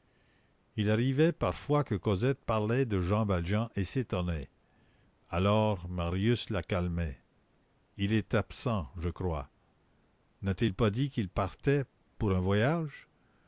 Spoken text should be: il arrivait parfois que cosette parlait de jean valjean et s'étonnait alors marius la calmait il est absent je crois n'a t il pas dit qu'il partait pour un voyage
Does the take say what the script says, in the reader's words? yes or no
yes